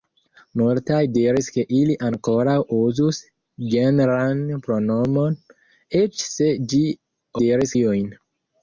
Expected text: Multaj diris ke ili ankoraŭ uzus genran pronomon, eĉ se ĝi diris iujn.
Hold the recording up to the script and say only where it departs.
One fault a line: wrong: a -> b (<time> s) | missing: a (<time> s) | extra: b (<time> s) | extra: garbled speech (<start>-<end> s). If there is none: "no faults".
no faults